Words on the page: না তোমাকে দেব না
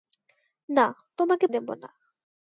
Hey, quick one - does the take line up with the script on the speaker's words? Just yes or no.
yes